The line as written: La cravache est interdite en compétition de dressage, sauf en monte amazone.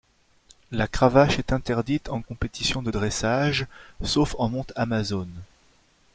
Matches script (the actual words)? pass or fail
pass